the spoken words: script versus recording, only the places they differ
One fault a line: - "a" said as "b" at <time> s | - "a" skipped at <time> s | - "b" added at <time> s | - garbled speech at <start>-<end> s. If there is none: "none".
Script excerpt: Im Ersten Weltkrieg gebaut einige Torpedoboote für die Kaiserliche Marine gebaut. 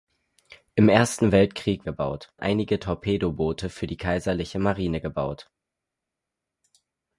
none